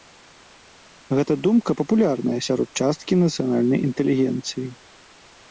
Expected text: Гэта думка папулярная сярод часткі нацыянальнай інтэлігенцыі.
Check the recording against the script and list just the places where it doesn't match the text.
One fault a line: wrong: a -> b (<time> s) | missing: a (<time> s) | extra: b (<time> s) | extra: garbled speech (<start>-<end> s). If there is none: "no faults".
no faults